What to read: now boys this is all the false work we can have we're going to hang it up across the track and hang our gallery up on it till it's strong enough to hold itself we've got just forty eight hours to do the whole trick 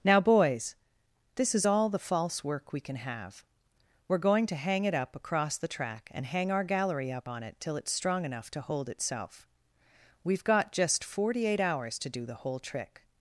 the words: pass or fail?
pass